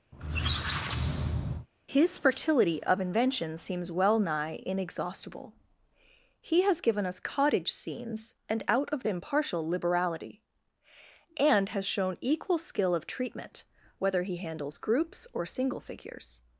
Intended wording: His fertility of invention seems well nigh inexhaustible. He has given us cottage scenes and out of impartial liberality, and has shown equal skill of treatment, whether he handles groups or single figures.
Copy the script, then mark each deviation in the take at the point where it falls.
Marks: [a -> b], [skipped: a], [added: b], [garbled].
His fertility of invention seems well nigh inexhaustible. He has given us cottage scenes and out of impartial liberality, and has shown equal skill of treatment, whether he handles groups or single figures.